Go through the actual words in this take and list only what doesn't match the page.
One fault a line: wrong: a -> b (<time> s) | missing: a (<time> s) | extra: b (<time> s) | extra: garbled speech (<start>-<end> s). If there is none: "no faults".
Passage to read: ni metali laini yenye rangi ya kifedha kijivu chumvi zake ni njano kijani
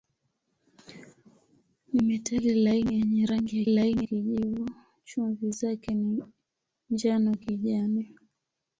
wrong: kifedha -> laini (3.7 s)